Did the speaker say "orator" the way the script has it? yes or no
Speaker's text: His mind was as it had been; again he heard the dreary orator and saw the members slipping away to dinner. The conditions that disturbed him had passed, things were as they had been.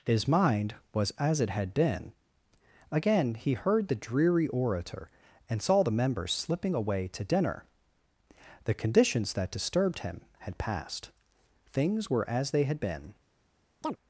yes